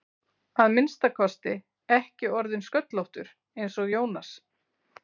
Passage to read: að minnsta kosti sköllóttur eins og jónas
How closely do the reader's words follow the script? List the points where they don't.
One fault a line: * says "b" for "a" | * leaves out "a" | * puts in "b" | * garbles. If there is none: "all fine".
* puts in "ekki orðinn"